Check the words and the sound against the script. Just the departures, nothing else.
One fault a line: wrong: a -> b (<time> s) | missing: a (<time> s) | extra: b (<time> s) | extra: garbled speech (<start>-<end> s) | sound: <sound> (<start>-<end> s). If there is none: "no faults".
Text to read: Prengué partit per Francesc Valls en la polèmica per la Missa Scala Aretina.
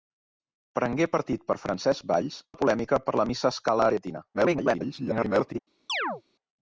missing: en (2.4 s)
extra: garbled speech (4.3-5.6 s)
sound: chirp (5.9-6.2 s)